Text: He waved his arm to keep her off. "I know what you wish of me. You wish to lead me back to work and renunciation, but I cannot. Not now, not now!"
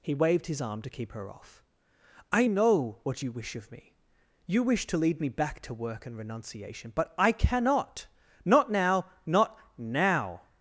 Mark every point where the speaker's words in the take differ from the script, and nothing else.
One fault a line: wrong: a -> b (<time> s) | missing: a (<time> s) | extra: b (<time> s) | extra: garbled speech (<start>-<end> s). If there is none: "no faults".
no faults